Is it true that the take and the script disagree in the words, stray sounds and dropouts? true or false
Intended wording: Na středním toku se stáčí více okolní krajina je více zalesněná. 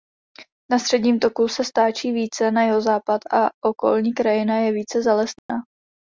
true